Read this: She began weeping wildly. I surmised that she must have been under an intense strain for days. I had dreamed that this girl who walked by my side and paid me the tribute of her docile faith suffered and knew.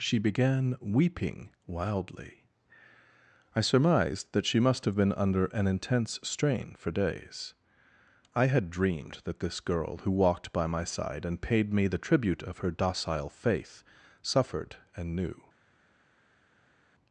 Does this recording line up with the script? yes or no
yes